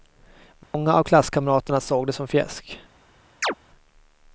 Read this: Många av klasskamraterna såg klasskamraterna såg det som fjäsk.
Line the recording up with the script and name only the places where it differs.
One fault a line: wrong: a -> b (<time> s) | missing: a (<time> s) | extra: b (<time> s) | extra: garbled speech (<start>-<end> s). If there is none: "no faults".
missing: klasskamraterna såg (2.1 s)